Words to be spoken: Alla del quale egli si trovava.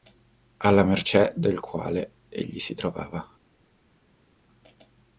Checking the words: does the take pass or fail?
fail